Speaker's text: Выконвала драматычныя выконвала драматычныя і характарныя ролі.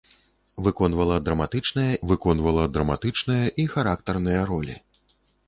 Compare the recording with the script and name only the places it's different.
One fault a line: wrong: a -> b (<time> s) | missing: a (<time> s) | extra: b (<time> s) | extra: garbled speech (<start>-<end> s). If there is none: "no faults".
no faults